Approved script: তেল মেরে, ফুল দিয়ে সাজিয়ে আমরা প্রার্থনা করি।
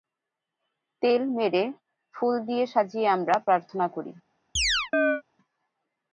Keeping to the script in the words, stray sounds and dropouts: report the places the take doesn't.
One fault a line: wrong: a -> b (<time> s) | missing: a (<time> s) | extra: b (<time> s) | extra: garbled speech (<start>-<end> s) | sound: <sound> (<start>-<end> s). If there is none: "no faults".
sound: chirp (4.6-5.2 s)